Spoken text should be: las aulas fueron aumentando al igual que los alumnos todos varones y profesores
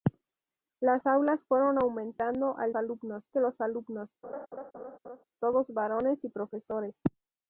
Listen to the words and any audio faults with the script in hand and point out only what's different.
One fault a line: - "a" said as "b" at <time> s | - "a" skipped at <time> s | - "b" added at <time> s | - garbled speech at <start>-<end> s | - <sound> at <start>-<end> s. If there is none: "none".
- "igual" said as "alumnos" at 2.7 s
- laugh at 4.2-5.2 s